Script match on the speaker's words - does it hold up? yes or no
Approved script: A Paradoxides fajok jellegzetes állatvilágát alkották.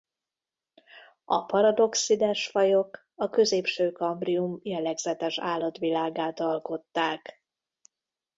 no